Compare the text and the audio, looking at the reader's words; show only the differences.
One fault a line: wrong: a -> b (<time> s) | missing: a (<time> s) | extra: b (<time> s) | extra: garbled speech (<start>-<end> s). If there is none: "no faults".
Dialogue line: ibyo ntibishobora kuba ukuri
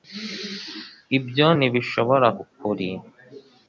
missing: kuba (2.3 s)